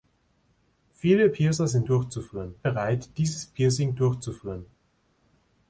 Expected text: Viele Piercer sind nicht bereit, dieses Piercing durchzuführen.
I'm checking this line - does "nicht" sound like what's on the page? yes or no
no